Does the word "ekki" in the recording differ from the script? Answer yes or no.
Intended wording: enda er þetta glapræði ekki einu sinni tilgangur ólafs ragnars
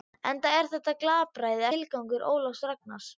yes